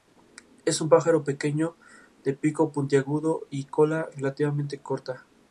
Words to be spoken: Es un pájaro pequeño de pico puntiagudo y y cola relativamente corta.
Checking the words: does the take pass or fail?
fail